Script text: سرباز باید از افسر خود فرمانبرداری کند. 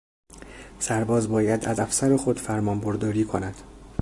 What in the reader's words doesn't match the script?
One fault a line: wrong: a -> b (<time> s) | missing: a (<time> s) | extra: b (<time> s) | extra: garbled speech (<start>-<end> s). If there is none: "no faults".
no faults